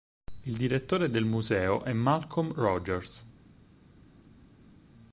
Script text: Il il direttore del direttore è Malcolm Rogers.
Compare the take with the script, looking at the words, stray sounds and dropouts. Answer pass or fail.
fail